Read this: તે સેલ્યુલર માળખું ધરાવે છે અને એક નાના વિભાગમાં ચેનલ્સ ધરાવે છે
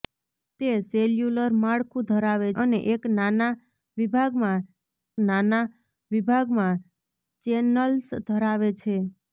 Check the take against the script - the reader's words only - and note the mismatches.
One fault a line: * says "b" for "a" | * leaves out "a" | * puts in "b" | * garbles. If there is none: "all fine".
* leaves out "છે"
* puts in "નાના વિભાગમાં"